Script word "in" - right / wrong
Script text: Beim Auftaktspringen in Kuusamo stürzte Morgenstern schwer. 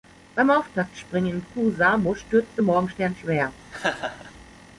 right